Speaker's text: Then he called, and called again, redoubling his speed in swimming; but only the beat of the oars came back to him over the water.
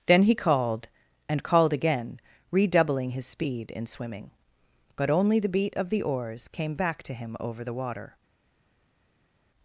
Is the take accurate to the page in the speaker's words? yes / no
yes